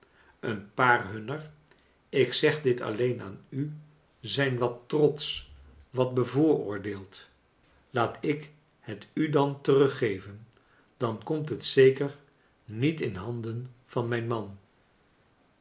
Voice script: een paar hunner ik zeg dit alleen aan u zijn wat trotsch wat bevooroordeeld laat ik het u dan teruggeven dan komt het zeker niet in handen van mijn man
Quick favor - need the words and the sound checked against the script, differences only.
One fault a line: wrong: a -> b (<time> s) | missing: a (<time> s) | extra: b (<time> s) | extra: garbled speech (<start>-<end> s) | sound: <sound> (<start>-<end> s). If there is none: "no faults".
no faults